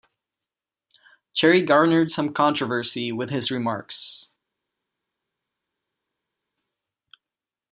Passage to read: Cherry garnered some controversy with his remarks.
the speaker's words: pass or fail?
pass